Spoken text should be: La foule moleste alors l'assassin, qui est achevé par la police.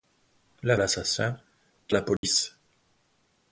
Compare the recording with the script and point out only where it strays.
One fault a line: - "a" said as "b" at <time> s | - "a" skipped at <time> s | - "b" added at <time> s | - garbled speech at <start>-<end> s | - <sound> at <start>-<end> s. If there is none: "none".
- "foule moleste alors" skipped at 0.8 s
- "est achevé par" skipped at 1.9 s
- dropout at 2.2-2.2 s